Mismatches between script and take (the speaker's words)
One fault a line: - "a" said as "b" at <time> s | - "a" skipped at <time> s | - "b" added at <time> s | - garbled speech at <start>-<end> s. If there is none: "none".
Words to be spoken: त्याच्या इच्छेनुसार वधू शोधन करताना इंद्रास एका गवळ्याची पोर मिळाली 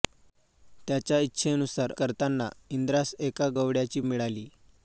- "वधू शोधन" skipped at 1.9 s
- "पोर" skipped at 4.0 s